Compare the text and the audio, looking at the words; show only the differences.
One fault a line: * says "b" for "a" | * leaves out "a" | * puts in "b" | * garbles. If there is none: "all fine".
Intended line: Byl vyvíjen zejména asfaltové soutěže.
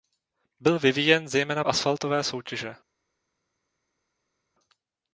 all fine